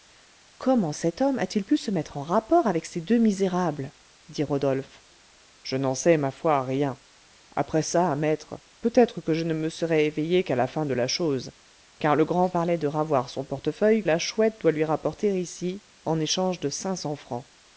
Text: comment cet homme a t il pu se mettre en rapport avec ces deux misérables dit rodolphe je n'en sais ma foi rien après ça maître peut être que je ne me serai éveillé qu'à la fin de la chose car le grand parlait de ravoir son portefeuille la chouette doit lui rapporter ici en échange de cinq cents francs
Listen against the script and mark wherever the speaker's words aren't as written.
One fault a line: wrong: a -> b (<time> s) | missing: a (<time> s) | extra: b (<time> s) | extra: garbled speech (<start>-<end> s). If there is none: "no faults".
no faults